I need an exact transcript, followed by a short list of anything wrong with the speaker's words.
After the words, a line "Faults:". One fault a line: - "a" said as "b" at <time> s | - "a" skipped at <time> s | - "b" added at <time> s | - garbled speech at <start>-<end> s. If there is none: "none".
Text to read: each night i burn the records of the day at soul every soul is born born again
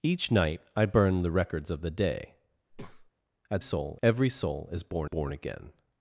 each night i burn the records of the day at soul every soul is born born again
Faults:
none